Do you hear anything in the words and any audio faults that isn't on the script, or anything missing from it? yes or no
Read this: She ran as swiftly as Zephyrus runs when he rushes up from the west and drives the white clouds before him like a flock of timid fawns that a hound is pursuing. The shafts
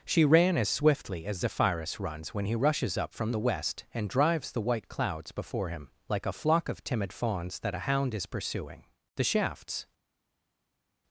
no